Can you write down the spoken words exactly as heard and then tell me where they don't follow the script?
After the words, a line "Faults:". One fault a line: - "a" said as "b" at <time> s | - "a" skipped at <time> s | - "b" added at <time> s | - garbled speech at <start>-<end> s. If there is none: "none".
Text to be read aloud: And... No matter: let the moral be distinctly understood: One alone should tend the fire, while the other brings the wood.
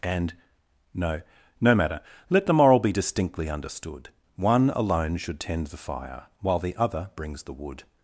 And... No no matter: let the moral be distinctly understood: One alone should tend the fire, while the other brings the wood.
Faults:
- "no" added at 1.6 s